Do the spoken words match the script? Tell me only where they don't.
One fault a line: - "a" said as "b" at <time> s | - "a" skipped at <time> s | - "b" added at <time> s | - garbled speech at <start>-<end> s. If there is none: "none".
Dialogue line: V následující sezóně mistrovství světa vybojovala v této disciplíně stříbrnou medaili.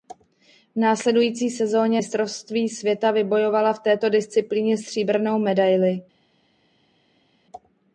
none